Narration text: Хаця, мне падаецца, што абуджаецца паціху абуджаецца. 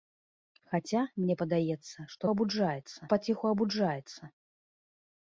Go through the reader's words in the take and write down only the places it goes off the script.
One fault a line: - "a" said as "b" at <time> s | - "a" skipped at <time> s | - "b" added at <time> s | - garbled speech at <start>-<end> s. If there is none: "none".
none